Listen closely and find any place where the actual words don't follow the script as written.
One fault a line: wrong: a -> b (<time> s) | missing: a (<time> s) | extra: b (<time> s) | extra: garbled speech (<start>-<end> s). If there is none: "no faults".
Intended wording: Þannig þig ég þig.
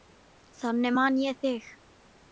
wrong: þig -> man (1.0 s)